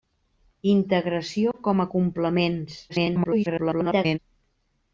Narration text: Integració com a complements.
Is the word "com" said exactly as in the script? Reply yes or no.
yes